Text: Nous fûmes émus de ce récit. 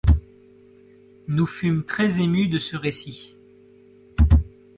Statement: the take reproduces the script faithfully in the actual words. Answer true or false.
false